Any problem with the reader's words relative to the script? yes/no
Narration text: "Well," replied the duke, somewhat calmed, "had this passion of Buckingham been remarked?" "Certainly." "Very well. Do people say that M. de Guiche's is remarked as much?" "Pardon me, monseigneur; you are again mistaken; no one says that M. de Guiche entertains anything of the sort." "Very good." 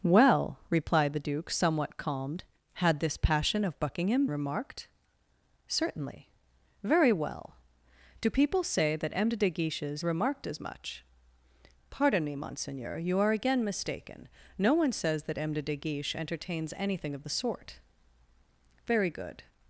yes